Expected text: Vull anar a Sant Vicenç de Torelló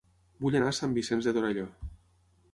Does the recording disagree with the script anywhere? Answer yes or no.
no